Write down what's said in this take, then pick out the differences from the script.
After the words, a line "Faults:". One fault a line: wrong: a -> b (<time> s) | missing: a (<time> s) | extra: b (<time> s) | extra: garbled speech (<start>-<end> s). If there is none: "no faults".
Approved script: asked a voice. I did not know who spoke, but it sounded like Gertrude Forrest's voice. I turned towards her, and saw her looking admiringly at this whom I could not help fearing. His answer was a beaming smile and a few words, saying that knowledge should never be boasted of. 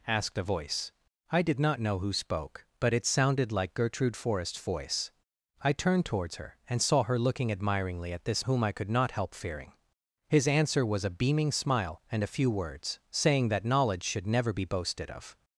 asked a voice. I did not know who spoke, but it sounded like Gertrude Forrest's voice. I turned towards her, and saw her looking admiringly at this whom I could not help fearing. His answer was a beaming smile and a few words, saying that knowledge should never be boasted of.
Faults:
no faults